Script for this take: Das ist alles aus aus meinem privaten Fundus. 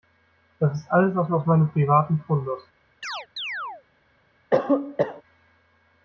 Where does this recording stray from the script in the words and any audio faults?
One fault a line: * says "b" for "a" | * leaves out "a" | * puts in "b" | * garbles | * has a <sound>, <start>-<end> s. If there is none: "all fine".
* has a chirp, 3.0-3.8 s
* has a cough, 4.5-5.2 s